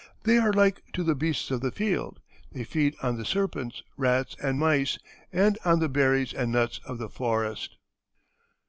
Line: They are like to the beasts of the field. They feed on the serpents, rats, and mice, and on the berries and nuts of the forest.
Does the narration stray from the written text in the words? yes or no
no